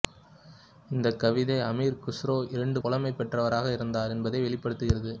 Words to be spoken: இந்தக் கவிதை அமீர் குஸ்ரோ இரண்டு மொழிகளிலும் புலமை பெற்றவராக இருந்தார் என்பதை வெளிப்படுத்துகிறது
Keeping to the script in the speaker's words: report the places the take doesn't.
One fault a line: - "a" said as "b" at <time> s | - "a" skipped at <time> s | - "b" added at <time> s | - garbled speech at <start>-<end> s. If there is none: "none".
- "மொழிகளிலும்" skipped at 2.8 s